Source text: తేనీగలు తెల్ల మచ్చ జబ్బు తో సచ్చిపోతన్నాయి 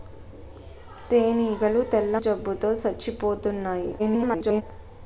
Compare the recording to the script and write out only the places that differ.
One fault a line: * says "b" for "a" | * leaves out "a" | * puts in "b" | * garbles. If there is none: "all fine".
* leaves out "మచ్చ"
* garbles